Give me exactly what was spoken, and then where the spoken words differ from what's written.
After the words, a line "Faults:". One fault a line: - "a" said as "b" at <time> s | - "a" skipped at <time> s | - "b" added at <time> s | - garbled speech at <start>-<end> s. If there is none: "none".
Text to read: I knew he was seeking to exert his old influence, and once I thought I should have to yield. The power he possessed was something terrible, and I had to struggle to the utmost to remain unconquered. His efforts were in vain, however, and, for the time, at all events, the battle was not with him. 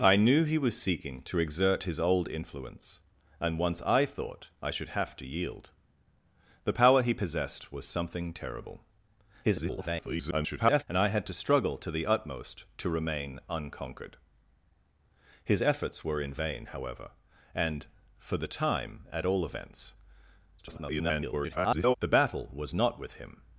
I knew he was seeking to exert his old influence, and once I thought I should have to yield. The power he possessed was something terrible, [garbled] and I had to struggle to the utmost to remain unconquered. His efforts were in vain, however, and, for the time, at all events, [garbled] the battle was not with him.
Faults:
- garbled speech at 9.4-10.8 s
- garbled speech at 20.6-21.9 s